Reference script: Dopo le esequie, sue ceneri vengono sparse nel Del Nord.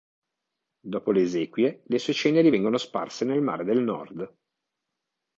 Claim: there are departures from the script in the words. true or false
true